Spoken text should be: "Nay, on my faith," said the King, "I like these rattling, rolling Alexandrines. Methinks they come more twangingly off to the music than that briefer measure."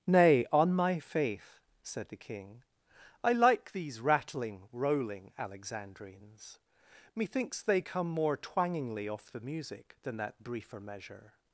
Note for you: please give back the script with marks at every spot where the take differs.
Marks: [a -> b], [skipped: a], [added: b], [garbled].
"Nay, on my faith," said the King, "I like these rattling, rolling Alexandrines. Methinks they come more twangingly off [skipped: to] the music than that briefer measure."